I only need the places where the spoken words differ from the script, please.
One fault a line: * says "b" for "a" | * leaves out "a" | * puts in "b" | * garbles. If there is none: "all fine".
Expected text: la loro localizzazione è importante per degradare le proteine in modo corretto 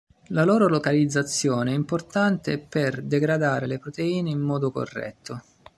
all fine